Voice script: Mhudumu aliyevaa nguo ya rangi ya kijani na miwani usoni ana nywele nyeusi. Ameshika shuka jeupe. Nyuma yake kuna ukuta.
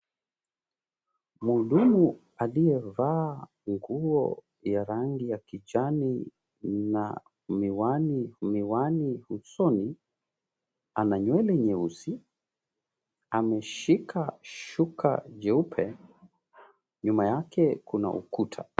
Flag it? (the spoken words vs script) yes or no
yes